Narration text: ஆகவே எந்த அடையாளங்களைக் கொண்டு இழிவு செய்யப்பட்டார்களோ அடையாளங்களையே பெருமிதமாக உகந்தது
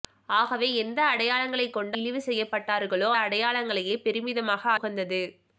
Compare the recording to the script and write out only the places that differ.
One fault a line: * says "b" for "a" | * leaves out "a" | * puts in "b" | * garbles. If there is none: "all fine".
all fine